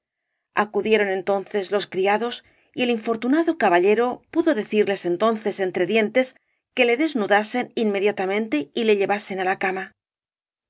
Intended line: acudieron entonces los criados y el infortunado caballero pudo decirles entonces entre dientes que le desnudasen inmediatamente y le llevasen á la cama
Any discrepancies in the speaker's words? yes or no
no